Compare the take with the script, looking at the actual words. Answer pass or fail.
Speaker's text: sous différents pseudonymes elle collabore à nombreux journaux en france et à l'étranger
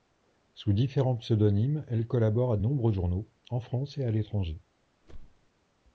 pass